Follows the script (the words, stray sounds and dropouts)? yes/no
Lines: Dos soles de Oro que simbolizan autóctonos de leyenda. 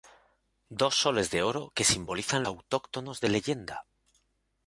yes